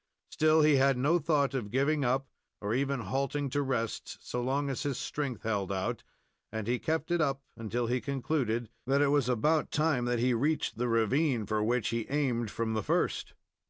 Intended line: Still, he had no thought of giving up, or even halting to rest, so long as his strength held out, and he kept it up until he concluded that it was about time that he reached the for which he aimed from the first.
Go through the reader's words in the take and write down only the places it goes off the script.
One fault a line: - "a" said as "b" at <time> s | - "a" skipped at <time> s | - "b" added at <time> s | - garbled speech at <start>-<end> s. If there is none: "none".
- "ravine" added at 10.9 s